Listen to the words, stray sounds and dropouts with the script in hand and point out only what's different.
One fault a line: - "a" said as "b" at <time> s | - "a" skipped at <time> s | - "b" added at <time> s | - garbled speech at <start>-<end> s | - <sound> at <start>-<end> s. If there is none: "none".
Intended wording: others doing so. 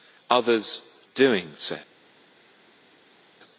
none